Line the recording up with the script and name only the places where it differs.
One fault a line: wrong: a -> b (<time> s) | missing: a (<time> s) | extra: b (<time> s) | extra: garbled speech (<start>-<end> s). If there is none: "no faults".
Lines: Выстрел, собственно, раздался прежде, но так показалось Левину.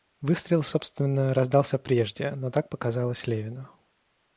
no faults